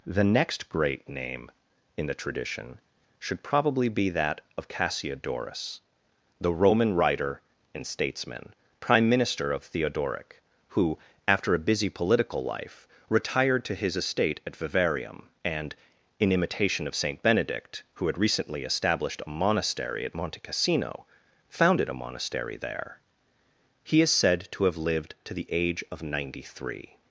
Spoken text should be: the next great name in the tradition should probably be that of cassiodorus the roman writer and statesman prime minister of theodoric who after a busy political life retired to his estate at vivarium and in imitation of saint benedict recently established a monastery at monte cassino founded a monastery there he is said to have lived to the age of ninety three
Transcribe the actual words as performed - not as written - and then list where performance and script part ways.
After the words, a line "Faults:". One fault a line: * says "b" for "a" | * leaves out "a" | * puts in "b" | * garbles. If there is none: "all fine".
the next great name in the tradition should probably be that of cassiodorus the roman writer and statesman prime minister of theodoric who after a busy political life retired to his estate at vivarium and in imitation of saint benedict who had recently established a monastery at monte cassino founded a monastery there he is said to have lived to the age of ninety three
Faults:
* puts in "who had"